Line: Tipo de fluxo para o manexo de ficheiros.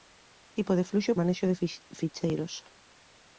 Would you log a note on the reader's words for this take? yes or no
yes